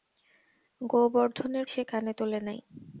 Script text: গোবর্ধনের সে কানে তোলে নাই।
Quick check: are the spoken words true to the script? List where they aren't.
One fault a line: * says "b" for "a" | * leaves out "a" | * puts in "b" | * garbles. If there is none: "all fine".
all fine